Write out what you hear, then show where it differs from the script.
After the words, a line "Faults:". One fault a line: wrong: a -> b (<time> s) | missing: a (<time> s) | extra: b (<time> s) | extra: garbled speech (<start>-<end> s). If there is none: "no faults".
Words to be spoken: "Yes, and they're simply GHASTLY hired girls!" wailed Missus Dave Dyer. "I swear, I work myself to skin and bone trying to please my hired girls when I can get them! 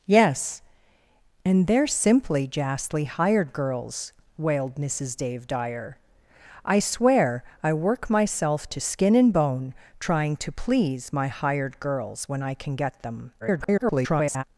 "Yes, and they're simply GHASTLY hired girls!" wailed Missus Dave Dyer. "I swear, I work myself to skin and bone trying to please my hired girls when I can get them! [garbled]
Faults:
extra: garbled speech (13.4-14.4 s)